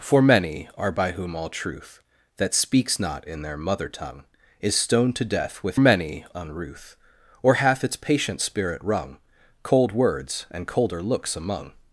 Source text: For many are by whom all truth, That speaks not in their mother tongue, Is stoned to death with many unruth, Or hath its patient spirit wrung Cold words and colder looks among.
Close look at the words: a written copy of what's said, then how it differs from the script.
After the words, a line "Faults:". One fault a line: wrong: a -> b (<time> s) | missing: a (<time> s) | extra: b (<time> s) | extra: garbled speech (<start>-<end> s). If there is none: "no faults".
For many are by whom all truth, That speaks not in their mother tongue, Is stoned to death with many unruth, Or hath its patient spirit wrung Cold words and colder looks among.
Faults:
no faults